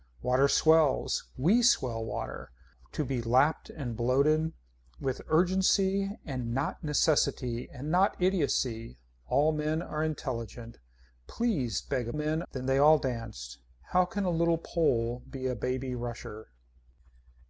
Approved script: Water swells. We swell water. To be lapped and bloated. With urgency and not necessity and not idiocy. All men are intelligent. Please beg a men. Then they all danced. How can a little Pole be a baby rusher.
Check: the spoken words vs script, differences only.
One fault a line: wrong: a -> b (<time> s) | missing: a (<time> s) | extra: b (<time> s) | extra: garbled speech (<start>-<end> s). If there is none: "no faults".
no faults